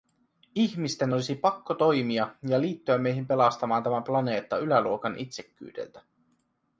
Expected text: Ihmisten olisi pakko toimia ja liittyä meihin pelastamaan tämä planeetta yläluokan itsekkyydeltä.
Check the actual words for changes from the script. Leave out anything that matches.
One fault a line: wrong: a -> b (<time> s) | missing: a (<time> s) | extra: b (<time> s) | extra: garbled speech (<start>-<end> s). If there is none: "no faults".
no faults